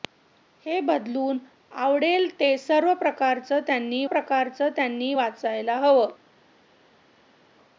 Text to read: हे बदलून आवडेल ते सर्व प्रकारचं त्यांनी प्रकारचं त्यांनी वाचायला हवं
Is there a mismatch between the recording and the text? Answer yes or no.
no